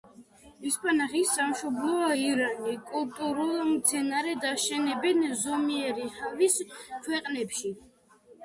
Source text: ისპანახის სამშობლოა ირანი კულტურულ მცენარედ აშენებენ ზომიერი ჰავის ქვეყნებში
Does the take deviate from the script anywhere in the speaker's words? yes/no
no